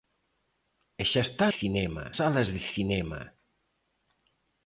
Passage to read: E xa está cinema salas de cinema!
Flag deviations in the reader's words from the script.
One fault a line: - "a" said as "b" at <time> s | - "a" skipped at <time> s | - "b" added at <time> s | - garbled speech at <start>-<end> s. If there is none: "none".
none